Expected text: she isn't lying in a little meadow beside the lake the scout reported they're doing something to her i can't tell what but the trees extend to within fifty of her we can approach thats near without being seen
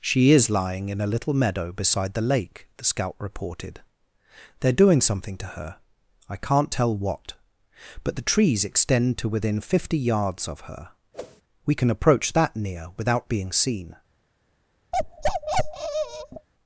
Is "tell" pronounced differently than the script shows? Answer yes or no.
no